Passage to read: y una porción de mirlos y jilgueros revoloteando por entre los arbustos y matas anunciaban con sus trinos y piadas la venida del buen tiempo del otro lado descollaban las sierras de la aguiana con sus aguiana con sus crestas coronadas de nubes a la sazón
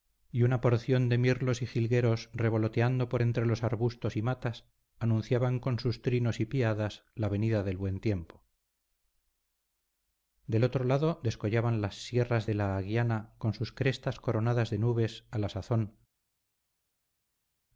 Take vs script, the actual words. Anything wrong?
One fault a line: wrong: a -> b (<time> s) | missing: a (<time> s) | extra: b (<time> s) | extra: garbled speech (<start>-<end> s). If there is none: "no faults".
missing: aguiana con sus (13.7 s)